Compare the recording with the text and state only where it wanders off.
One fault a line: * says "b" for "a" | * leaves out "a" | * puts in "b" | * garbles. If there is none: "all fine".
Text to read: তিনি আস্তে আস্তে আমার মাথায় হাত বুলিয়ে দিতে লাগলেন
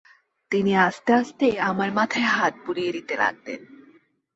all fine